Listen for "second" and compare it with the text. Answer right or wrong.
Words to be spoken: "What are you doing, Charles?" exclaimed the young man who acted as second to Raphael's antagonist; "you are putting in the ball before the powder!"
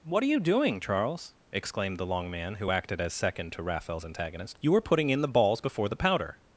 right